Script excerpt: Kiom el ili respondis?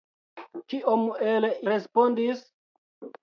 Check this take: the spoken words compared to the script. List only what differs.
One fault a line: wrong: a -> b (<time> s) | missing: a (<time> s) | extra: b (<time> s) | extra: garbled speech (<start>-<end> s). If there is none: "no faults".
missing: ili (1.5 s)